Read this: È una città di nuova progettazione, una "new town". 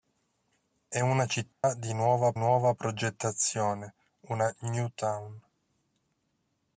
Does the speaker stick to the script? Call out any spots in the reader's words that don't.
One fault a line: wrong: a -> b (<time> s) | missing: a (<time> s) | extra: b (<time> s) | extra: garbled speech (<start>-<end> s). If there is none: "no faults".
extra: nuova (2.4 s)